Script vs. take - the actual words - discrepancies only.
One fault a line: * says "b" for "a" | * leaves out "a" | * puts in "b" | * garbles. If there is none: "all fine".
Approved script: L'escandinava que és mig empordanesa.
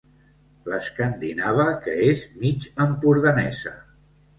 all fine